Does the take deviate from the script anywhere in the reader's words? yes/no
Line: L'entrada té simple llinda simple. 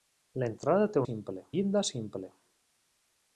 no